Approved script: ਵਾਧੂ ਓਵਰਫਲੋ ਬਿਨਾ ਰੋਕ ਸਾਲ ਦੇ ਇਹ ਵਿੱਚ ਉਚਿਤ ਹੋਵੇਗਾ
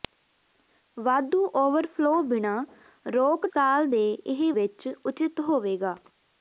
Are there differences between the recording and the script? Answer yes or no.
no